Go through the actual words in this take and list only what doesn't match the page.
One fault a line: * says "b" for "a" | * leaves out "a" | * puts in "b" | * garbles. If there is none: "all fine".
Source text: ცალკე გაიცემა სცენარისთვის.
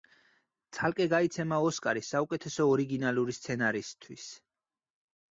* puts in "ოსკარი საუკეთესო ორიგინალური"